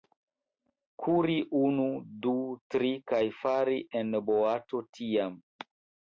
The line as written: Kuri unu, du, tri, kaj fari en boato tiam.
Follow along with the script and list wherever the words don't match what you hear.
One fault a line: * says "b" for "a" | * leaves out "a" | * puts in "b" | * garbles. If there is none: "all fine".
all fine